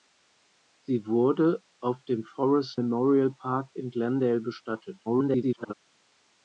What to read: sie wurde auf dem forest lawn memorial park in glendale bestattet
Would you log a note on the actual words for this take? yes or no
yes